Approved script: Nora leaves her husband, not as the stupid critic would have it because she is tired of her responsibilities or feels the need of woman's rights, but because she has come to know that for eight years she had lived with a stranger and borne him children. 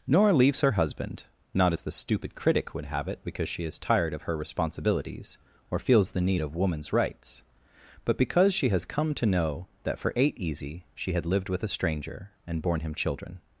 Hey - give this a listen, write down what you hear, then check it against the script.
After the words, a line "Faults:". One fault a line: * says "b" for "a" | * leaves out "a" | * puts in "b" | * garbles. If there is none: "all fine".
Nora leaves her husband, not as the stupid critic would have it because she is tired of her responsibilities or feels the need of woman's rights, but because she has come to know that for eight easy she had lived with a stranger and borne him children.
Faults:
* says "easy" for "years"